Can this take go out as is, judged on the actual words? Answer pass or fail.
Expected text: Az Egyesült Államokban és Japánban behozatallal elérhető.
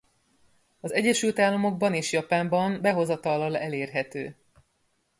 pass